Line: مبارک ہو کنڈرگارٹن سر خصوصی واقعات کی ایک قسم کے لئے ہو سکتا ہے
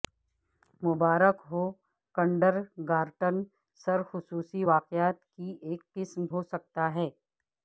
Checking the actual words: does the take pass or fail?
fail